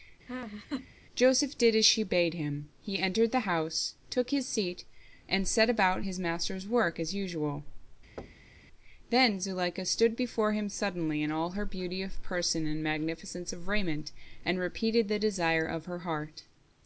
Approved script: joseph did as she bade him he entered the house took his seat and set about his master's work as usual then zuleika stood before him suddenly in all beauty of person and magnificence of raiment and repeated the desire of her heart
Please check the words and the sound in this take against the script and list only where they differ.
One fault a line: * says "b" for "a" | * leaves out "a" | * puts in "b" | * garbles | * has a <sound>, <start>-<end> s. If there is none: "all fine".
* has a laugh, 0.3-0.9 s
* has a thud, 8.2-8.6 s
* puts in "her"